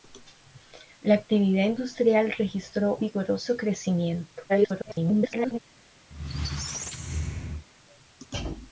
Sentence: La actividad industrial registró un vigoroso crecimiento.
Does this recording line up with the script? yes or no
no